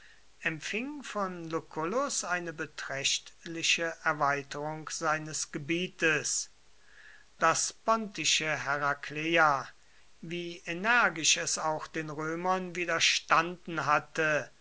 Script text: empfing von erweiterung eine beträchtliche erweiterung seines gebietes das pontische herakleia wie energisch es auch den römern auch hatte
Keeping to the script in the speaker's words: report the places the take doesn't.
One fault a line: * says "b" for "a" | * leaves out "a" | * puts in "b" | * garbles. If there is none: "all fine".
* says "lucullus" for "erweiterung"
* says "widerstanden" for "auch"